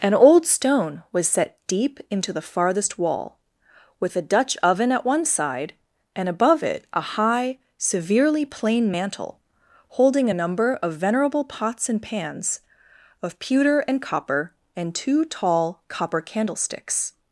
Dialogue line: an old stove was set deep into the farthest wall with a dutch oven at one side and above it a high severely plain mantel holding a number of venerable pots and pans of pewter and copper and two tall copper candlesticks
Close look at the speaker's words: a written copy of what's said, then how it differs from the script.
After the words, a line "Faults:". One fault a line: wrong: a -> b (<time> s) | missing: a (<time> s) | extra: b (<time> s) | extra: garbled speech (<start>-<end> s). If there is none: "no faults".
an old stone was set deep into the farthest wall with a dutch oven at one side and above it a high severely plain mantel holding a number of venerable pots and pans of pewter and copper and two tall copper candlesticks
Faults:
wrong: stove -> stone (0.5 s)